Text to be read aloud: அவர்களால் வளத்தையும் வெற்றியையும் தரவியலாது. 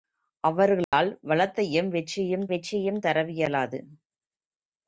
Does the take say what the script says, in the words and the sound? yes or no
no